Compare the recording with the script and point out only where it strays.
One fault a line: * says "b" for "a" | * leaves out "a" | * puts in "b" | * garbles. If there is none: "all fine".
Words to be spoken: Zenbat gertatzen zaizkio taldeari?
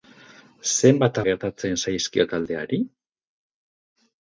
all fine